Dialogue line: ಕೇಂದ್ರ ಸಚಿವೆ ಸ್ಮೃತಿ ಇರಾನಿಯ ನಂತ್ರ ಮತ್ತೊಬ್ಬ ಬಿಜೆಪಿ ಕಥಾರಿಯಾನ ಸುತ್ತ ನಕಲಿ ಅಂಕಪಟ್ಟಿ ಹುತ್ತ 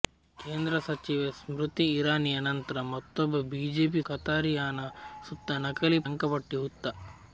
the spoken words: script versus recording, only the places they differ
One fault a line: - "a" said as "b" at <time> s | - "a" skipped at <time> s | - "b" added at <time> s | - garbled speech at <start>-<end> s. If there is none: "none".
none